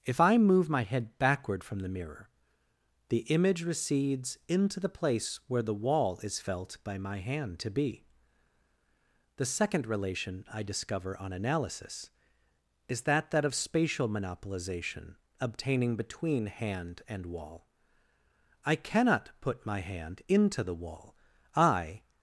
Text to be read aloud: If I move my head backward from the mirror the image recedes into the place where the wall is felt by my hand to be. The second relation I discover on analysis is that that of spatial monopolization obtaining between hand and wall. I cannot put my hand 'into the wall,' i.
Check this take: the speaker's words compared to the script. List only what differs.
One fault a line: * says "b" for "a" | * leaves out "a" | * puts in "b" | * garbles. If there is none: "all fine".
all fine